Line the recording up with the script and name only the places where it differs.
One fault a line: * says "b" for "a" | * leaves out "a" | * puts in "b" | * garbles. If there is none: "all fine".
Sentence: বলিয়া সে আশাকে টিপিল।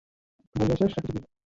all fine